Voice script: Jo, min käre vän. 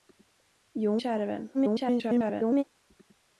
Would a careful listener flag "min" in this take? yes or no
yes